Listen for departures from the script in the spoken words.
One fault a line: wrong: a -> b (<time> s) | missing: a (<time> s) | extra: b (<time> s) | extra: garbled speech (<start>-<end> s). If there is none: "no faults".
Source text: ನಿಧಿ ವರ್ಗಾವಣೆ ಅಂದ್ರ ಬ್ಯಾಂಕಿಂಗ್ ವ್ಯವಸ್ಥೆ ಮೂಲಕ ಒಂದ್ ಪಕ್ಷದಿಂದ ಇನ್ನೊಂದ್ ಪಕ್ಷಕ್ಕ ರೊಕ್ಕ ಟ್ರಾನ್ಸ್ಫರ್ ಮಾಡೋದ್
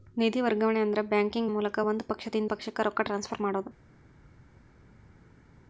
missing: ವ್ಯವಸ್ಥೆ (1.5 s)
missing: ಇನ್ನೊಂದ್ (2.5 s)